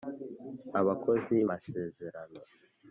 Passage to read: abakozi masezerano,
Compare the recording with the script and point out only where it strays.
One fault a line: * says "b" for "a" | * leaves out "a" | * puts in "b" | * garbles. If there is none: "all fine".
all fine